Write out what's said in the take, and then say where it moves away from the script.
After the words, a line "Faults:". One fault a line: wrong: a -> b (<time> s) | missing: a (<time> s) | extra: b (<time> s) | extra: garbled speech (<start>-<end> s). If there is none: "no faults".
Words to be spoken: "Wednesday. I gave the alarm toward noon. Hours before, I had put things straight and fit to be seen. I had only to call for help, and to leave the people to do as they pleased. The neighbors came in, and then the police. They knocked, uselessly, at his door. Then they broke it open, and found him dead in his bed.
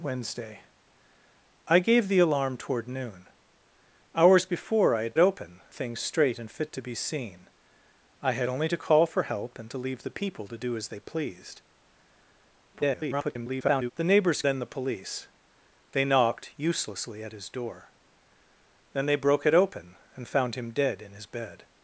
"Wednesday. I gave the alarm toward noon. Hours before, I had open things straight and fit to be seen. I had only to call for help, and to leave the people to do as they pleased. [garbled] The neighbors then the police. They knocked, uselessly, at his door. Then they broke it open, and found him dead in his bed.
Faults:
wrong: put -> open (5.2 s)
extra: garbled speech (12.7-13.9 s)
missing: came in and (14.4 s)